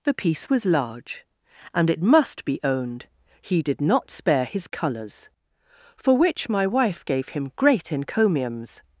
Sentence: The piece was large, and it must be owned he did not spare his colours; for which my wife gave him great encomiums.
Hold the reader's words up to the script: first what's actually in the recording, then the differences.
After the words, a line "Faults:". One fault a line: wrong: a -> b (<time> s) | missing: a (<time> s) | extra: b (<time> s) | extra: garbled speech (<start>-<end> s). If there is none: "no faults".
The piece was large, and it must be owned he did not spare his colours; for which my wife gave him great encomiums.
Faults:
no faults